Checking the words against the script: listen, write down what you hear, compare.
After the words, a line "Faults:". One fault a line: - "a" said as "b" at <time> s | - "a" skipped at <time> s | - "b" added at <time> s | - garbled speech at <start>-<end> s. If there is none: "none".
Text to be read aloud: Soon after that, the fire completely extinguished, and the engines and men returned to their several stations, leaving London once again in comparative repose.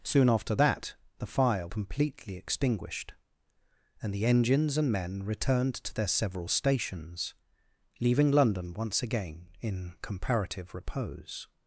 Soon after that, the fire completely extinguished, and the engines and men returned to their several stations, leaving London once again in comparative repose.
Faults:
none